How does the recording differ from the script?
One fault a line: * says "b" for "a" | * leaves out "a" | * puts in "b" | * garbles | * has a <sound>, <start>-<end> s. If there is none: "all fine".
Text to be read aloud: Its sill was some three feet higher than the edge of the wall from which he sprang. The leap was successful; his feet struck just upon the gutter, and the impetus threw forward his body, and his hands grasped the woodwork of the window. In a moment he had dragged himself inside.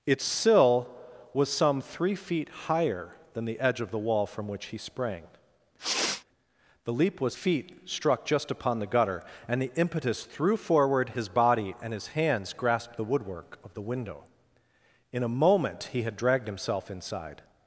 * has a sniff, 5.8-6.2 s
* leaves out "successful his"